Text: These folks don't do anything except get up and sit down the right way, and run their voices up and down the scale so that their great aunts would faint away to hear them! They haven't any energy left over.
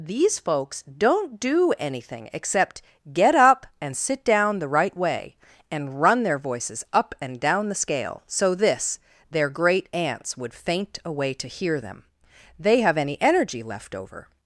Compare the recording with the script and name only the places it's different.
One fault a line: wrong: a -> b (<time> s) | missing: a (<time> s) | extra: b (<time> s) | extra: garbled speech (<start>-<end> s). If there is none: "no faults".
wrong: that -> this (8.6 s)
wrong: haven't -> have (12.8 s)